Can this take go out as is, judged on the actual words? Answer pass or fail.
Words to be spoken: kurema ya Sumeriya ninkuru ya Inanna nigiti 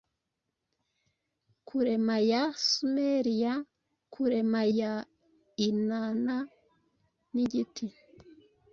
fail